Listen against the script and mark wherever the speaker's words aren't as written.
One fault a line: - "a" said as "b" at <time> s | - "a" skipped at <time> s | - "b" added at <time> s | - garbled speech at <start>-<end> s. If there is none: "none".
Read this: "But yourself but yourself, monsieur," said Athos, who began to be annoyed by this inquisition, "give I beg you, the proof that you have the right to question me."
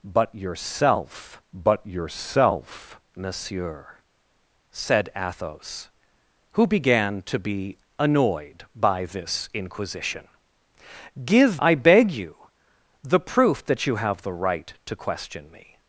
none